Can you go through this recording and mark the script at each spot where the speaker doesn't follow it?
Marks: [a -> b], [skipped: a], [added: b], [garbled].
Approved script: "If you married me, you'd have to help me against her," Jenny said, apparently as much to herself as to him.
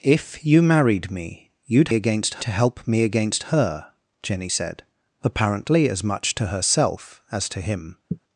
"If you married me, you'd [have -> against] to help me against her," Jenny said, apparently as much to herself as to him.